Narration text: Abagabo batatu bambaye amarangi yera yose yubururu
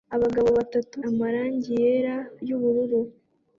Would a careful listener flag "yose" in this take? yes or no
yes